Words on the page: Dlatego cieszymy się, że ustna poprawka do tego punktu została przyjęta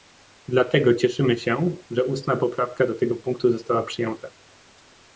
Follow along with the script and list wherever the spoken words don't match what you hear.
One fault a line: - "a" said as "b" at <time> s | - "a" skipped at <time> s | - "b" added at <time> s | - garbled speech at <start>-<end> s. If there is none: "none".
none